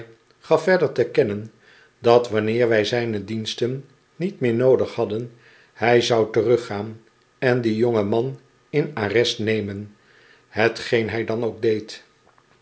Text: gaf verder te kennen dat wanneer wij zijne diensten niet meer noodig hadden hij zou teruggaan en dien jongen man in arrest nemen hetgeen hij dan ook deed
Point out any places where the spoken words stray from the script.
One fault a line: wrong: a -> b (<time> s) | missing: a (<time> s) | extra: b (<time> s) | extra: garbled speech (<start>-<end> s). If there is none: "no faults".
no faults